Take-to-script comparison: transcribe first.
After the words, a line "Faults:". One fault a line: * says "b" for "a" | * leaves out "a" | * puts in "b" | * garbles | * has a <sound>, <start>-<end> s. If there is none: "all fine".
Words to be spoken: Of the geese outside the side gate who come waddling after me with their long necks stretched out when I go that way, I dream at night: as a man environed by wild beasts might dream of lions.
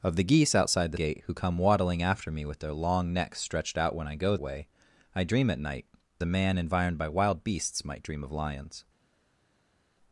Of the geese outside the gate who come waddling after me with their long necks stretched out when I go way, I dream at night: a man environed by wild beasts might dream of lions.
Faults:
* leaves out "side"
* leaves out "that"
* leaves out "as"